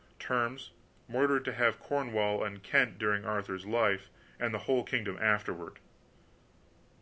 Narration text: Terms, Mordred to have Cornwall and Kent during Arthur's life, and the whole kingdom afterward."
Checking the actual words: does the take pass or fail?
pass